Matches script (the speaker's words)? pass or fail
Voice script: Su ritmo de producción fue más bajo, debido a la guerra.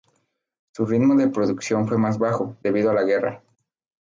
pass